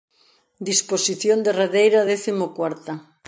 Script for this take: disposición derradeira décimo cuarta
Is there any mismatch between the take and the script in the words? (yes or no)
no